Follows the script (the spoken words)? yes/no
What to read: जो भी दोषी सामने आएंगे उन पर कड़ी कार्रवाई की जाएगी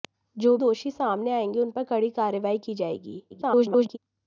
no